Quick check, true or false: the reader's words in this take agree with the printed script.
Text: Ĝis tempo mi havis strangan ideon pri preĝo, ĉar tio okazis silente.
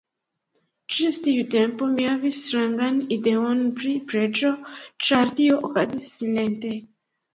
false